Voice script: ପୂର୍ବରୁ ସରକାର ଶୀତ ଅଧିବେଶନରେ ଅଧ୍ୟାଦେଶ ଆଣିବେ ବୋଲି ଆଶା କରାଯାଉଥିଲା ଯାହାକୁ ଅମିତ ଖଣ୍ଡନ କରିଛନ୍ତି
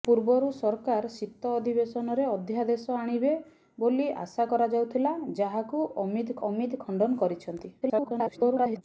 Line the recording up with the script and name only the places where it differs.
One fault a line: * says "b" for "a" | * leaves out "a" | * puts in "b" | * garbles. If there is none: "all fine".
* puts in "ଅମିତ"
* garbles